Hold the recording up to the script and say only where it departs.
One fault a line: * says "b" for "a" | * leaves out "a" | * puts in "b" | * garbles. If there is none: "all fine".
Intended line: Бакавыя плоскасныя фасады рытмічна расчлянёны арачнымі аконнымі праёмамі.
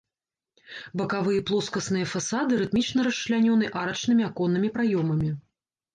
all fine